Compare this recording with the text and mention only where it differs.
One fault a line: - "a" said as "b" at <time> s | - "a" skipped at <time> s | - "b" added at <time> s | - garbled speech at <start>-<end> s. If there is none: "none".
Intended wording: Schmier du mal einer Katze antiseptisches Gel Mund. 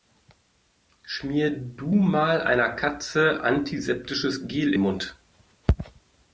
none